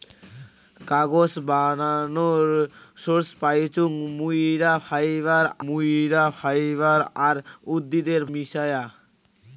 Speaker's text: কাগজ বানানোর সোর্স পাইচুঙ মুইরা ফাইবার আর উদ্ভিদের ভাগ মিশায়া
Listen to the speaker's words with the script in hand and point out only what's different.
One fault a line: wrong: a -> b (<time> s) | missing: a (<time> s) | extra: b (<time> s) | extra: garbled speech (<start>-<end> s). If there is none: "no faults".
extra: মুইরা ফাইবার (5.7 s)
missing: ভাগ (8.2 s)